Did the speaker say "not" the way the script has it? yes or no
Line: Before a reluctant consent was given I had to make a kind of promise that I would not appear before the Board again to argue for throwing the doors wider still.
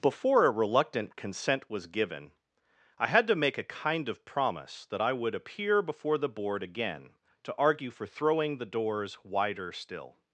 no